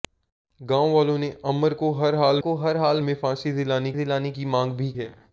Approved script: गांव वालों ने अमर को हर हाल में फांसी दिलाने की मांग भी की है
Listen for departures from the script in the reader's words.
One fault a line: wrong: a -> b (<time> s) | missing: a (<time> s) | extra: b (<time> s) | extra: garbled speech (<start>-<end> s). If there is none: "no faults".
extra: को हर हाल (2.4 s)
extra: दिलाने (3.9 s)
missing: की (4.9 s)